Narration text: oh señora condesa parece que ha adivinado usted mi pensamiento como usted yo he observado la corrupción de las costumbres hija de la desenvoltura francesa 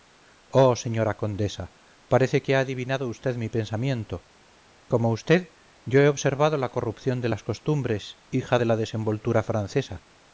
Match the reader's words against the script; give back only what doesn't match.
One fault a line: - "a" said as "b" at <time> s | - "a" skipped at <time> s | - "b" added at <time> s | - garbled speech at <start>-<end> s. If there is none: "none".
none